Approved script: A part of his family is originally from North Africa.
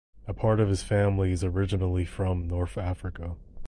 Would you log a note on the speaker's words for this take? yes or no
no